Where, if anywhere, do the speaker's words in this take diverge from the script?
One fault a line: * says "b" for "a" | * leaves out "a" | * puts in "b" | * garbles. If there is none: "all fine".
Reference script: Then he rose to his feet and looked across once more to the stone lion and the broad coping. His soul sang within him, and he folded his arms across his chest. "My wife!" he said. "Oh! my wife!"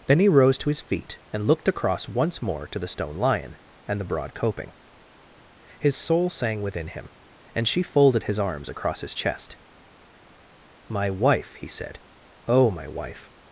* says "she" for "he"